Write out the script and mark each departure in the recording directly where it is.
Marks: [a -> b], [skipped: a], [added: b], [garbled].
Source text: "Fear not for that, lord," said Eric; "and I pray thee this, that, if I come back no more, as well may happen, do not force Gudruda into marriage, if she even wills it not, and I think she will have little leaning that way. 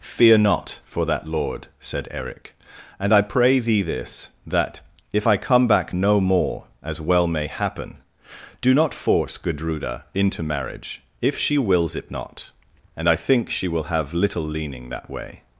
"Fear not for that, lord," said Eric; "and I pray thee this, that, if I come back no more, as well may happen, do not force Gudruda into marriage, if she [skipped: even] wills it not, and I think she will have little leaning that way.